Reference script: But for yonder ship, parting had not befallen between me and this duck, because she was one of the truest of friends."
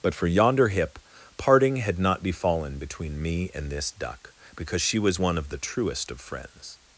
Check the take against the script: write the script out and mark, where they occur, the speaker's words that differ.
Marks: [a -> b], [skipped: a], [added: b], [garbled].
But for yonder [ship, -> hip] parting had not befallen between me and this duck, because she was one of the truest of friends."